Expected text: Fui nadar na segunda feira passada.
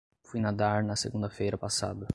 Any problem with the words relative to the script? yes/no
no